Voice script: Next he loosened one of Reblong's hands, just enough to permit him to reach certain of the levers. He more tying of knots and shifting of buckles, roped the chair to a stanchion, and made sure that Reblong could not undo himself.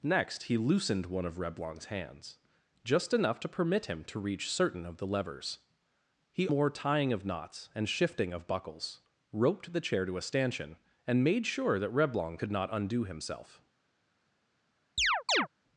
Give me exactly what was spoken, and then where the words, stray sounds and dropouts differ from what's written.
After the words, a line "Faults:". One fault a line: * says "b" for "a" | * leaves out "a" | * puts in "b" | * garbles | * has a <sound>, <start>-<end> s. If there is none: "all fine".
Next he loosened one of Reblong's hands, just enough to permit him to reach certain of the levers. He more tying of knots and shifting of buckles, roped the chair to a stanchion, and made sure that Reblong could not undo himself.
Faults:
* has a chirp, 15.0-15.5 s